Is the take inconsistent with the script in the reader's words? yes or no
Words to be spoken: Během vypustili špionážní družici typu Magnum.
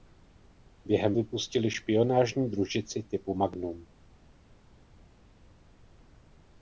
no